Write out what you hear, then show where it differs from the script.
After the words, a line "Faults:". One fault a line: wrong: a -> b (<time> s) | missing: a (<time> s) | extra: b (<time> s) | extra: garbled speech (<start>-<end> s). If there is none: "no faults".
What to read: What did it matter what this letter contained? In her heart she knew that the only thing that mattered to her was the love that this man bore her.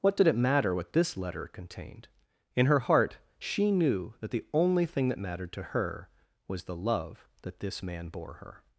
What did it matter what this letter contained? In her heart she knew that the only thing that mattered to her was the love that this man bore her.
Faults:
no faults